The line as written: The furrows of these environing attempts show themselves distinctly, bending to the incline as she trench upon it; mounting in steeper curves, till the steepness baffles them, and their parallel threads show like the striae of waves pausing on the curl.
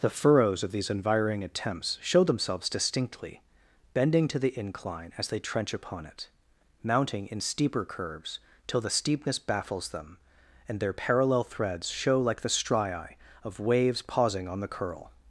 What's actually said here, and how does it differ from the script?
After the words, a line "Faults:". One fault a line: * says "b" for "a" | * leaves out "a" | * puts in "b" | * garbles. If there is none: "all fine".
The furrows of these environing attempts show themselves distinctly, bending to the incline as they trench upon it; mounting in steeper curves, till the steepness baffles them, and their parallel threads show like the striae of waves pausing on the curl.
Faults:
* says "they" for "she"